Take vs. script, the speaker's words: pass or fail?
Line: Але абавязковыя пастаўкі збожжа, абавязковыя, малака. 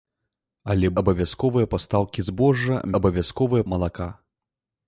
pass